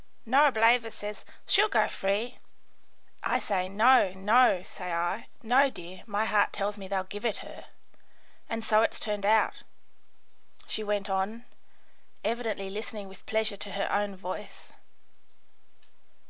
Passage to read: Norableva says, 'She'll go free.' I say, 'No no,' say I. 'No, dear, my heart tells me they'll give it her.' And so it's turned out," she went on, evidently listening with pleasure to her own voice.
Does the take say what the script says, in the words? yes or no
yes